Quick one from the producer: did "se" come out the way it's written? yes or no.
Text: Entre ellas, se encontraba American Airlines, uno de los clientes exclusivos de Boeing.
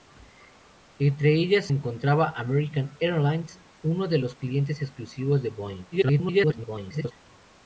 no